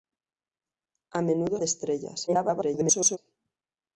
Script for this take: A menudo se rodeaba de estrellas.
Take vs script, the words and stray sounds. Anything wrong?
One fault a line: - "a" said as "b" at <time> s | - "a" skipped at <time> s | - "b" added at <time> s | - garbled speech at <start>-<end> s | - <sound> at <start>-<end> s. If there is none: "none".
- "se rodeaba" skipped at 1.6 s
- garbled speech at 2.3-3.2 s